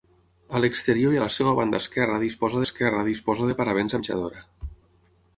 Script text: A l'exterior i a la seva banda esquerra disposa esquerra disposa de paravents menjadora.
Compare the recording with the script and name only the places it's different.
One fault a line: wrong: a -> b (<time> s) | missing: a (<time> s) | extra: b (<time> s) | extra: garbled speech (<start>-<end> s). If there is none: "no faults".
no faults